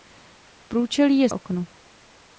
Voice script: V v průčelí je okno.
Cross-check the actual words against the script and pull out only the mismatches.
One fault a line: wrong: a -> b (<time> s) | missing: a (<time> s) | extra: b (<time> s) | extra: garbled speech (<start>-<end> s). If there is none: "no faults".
no faults